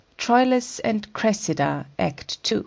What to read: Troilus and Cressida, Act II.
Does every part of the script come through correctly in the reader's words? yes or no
yes